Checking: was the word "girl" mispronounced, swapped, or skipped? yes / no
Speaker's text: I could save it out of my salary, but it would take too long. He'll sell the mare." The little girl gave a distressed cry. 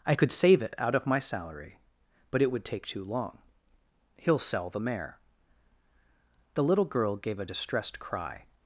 no